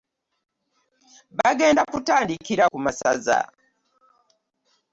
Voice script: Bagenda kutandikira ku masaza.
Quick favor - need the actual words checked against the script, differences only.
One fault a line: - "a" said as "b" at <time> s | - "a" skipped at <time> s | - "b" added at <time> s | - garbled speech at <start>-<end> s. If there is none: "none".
none